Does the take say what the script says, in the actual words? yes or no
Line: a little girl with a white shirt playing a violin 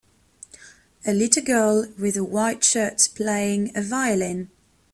yes